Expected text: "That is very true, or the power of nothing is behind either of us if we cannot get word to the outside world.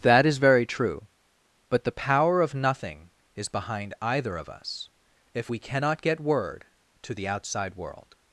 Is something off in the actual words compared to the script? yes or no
yes